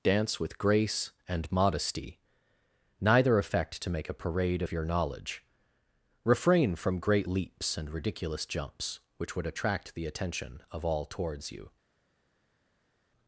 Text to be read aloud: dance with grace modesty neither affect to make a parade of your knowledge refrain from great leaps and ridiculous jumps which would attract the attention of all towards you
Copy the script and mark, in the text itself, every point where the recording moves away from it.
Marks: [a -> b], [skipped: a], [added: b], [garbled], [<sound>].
dance with grace [added: and] modesty neither affect to make a parade of your knowledge refrain from great leaps and ridiculous jumps which would attract the attention of all towards you